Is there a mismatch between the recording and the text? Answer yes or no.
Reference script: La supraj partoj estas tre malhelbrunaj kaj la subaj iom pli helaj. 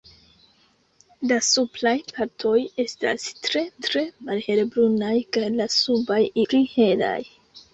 yes